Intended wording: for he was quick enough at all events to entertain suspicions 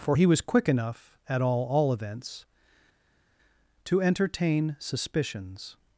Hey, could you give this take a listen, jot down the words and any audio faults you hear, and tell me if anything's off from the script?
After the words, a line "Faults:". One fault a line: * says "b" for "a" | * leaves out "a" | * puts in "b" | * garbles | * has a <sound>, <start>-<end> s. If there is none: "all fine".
for he was quick enough at all all events to entertain suspicions
Faults:
* puts in "all"